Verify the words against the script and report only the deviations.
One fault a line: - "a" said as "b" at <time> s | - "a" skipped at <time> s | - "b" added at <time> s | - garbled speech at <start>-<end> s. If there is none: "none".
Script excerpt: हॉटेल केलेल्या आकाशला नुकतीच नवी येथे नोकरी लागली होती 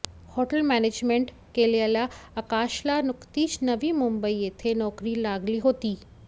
- "मॅनेजमेंट" added at 0.6 s
- "मुंबई" added at 3.9 s